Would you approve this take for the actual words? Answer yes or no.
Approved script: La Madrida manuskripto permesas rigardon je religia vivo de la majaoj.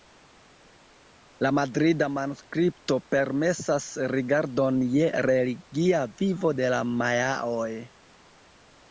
yes